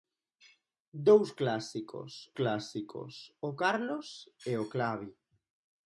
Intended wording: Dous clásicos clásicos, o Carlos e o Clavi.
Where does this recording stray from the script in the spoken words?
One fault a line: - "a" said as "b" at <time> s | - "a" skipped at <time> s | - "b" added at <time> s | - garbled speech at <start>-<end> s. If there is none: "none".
none